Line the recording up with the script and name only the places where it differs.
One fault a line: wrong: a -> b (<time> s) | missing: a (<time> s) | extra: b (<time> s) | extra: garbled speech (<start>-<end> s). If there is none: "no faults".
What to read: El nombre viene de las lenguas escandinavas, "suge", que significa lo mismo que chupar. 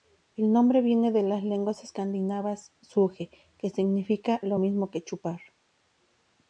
no faults